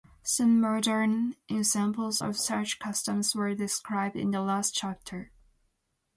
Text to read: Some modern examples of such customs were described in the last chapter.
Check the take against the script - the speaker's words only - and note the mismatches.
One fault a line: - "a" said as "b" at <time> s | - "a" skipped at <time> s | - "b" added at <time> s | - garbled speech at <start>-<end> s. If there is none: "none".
none